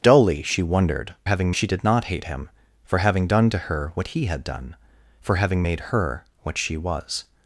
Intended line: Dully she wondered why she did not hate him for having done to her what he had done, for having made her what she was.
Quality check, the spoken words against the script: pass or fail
fail